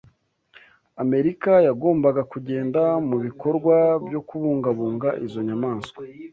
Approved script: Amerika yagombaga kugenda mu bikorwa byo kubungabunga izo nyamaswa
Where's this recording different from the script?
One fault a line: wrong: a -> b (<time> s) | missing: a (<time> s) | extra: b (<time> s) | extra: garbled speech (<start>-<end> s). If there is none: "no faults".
no faults